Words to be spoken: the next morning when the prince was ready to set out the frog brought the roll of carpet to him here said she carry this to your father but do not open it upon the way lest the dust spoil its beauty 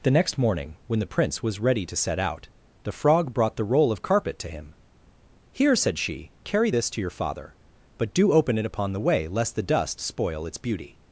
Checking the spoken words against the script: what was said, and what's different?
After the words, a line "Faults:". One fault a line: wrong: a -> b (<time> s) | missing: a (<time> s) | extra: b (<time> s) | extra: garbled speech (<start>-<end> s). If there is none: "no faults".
the next morning when the prince was ready to set out the frog brought the roll of carpet to him here said she carry this to your father but do open it upon the way lest the dust spoil its beauty
Faults:
missing: not (8.3 s)